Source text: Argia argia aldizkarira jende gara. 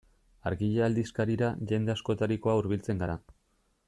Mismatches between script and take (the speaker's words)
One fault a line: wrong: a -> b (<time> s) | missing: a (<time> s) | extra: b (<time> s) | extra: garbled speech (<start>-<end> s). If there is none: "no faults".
missing: argia (0.8 s)
extra: askotarikoa hurbiltzen (1.9 s)